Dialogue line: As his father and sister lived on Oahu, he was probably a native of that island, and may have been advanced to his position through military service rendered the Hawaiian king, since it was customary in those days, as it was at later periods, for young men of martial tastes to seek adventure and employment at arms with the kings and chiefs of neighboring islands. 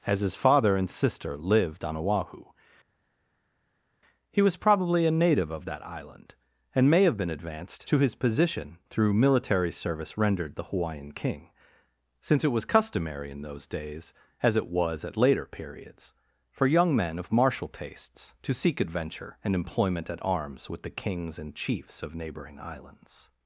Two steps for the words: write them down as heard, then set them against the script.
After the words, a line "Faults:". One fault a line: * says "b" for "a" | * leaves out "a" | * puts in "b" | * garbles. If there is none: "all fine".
As his father and sister lived on Oahu, he was probably a native of that island, and may have been advanced to his position through military service rendered the Hawaiian king, since it was customary in those days, as it was at later periods, for young men of martial tastes to seek adventure and employment at arms with the kings and chiefs of neighboring islands.
Faults:
all fine